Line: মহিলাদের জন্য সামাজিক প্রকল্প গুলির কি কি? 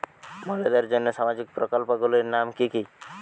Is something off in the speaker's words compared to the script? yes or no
yes